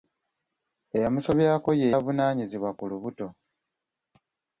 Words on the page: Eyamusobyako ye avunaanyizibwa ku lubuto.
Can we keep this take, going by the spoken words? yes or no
yes